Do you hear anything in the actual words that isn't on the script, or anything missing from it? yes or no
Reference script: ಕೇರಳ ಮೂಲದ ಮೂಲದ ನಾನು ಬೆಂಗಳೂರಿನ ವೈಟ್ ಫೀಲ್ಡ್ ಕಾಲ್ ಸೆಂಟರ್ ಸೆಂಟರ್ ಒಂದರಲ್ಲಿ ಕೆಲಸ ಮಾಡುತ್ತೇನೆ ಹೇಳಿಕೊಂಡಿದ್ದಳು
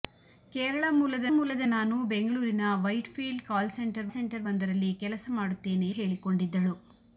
no